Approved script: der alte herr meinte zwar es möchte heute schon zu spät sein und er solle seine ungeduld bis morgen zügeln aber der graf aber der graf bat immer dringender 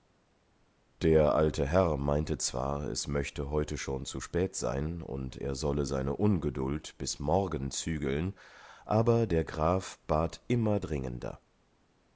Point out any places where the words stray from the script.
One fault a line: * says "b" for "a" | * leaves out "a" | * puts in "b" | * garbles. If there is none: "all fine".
* leaves out "aber der graf"